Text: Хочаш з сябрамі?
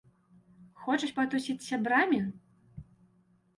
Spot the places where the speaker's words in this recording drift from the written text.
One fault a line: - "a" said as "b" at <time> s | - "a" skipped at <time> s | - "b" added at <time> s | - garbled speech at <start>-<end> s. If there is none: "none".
- "патусіць" added at 1.2 s